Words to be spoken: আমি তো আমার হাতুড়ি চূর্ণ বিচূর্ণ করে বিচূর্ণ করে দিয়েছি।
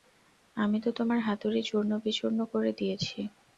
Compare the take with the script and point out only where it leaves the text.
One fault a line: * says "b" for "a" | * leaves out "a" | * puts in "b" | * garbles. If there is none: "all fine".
* says "তোমার" for "আমার"
* leaves out "বিচূর্ণ করে"